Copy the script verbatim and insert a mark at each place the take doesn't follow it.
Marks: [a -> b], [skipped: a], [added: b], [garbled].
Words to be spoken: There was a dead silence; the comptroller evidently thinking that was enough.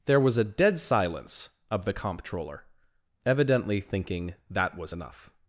There was a dead silence; [added: of] the comptroller evidently thinking that was enough.